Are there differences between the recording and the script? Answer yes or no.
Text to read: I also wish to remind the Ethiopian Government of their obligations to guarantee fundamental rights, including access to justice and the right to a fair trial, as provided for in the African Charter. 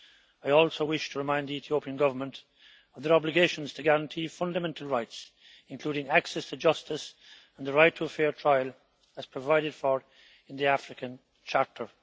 no